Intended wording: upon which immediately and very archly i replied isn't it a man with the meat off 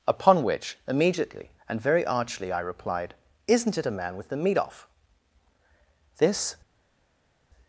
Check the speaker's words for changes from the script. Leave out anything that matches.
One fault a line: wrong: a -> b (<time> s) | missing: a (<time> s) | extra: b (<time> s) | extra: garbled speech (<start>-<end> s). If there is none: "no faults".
extra: this (6.2 s)